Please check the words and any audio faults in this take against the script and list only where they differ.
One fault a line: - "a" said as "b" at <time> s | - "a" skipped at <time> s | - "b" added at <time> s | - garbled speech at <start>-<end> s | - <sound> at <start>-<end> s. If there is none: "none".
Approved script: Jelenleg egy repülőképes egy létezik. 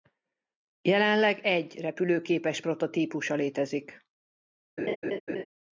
- "egy" said as "prototípusa" at 2.6 s
- laugh at 4.8-5.4 s